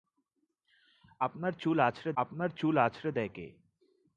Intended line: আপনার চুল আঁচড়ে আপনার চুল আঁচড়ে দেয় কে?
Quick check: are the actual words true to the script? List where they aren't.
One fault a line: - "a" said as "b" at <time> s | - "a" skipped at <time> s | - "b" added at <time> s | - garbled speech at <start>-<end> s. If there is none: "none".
none